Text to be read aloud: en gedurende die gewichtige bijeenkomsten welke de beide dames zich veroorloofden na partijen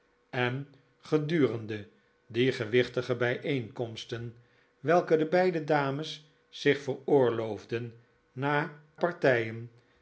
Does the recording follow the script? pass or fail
pass